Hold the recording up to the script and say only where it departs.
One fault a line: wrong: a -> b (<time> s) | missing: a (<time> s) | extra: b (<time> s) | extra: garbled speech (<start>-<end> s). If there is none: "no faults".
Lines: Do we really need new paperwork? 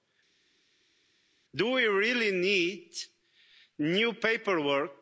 no faults